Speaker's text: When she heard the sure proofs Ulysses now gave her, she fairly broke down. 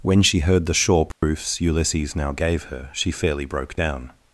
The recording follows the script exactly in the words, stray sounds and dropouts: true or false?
false